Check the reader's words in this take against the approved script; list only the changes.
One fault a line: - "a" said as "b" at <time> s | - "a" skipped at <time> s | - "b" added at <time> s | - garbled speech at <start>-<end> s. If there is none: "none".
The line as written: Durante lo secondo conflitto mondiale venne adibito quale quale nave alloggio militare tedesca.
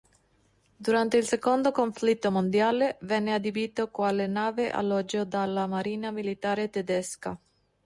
- "lo" said as "il" at 1.2 s
- "quale" skipped at 4.3 s
- "dalla marina" added at 5.2 s